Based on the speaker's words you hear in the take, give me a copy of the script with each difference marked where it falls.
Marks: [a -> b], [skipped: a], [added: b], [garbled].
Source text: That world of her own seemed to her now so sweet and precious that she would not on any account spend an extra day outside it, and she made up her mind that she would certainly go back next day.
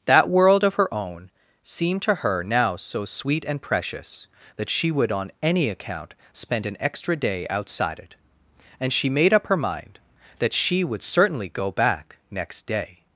That world of her own seemed to her now so sweet and precious that she would [skipped: not] on any account spend an extra day outside it, and she made up her mind that she would certainly go back next day.